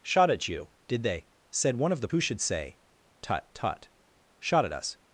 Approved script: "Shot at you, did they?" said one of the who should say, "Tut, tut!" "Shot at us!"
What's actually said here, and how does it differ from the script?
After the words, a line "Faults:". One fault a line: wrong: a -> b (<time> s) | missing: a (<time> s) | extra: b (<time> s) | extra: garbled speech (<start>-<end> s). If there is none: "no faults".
"Shot at you, did they?" said one of the who should say, "Tut, tut!" "Shot at us!"
Faults:
no faults